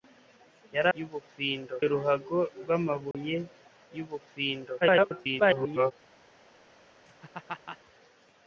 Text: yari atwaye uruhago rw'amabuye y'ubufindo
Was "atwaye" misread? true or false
true